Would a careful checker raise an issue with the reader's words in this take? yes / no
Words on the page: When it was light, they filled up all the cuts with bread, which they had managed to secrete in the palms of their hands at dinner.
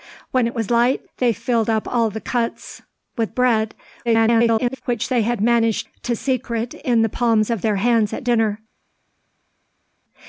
yes